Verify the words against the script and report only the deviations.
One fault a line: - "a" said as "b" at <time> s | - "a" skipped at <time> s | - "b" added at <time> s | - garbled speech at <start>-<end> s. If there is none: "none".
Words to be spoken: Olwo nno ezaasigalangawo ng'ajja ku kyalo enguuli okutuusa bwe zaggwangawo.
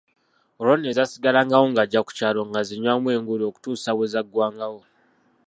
- "ng'azinywamu" added at 2.5 s